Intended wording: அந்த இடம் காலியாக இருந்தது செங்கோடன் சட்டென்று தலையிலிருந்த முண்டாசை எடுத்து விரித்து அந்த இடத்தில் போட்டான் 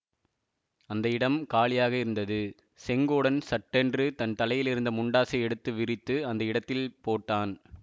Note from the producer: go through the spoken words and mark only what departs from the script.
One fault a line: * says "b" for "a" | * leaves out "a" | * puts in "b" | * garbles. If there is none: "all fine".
* puts in "தன்"